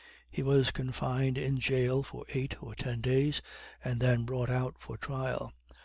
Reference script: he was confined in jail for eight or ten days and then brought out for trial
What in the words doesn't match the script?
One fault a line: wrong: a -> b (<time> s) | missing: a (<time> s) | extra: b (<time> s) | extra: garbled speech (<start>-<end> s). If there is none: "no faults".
no faults